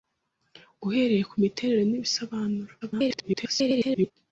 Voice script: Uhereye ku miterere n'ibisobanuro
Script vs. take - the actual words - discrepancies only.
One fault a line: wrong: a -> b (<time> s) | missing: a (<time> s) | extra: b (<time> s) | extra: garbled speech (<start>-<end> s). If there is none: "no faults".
extra: garbled speech (2.8-4.1 s)